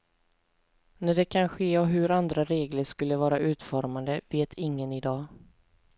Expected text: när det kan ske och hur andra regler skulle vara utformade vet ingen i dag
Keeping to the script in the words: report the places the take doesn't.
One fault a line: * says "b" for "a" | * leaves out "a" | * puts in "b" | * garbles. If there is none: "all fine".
all fine